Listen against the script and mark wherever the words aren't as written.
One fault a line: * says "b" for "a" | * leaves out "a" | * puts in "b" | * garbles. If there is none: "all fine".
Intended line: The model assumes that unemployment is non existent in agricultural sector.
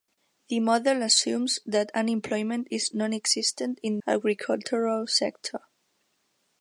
all fine